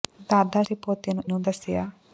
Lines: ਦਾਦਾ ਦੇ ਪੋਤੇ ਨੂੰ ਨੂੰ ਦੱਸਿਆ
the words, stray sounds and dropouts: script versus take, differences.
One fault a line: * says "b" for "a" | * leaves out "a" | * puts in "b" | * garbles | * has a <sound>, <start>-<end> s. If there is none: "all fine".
all fine